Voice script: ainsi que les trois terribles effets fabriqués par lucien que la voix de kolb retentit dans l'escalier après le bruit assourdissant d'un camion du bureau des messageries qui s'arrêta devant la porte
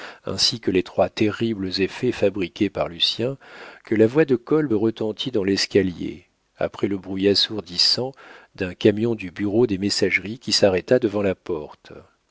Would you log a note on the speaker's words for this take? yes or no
no